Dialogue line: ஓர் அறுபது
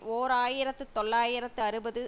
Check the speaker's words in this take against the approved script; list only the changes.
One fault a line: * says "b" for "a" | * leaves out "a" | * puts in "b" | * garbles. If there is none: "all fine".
* puts in "ஆயிரத்து தொள்ளாயிரத்து"